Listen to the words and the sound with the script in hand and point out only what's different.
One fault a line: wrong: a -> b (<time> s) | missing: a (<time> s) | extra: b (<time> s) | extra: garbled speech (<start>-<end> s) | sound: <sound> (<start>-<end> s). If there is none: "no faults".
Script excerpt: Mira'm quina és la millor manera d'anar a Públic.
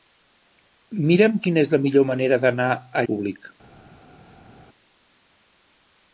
no faults